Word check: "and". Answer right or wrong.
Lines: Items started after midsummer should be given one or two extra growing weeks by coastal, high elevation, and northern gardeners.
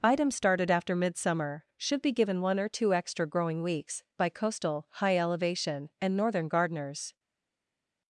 right